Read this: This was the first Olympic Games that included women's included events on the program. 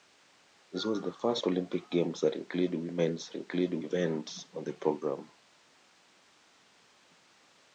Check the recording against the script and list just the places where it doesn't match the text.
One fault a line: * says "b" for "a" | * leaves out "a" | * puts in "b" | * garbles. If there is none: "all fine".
all fine